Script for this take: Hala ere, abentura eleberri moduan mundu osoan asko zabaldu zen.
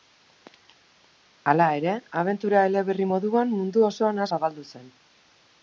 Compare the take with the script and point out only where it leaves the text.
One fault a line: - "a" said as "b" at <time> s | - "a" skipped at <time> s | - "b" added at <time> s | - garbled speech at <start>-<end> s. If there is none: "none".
- "asko" skipped at 4.3 s